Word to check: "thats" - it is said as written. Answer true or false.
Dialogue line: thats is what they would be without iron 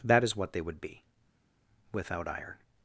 false